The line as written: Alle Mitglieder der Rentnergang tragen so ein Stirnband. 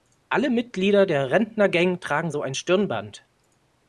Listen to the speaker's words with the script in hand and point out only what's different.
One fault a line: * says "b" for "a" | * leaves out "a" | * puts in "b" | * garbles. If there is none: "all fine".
all fine